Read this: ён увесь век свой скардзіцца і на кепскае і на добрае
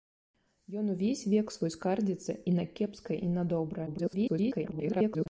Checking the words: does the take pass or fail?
fail